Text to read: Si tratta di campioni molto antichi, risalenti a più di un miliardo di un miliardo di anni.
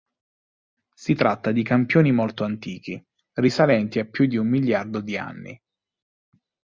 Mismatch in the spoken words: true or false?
true